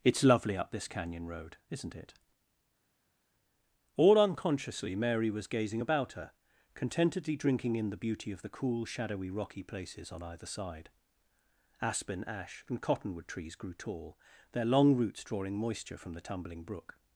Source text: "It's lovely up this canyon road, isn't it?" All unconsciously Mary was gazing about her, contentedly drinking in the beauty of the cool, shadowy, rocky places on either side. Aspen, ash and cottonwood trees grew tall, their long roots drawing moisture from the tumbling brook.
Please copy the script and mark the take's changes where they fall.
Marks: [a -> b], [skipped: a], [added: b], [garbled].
"It's lovely up this canyon road, isn't it?" All unconsciously Mary was gazing about her, contentedly drinking in the beauty of the cool, shadowy, rocky places on either side. Aspen, ash and cottonwood trees grew tall, their long roots drawing moisture from the tumbling brook.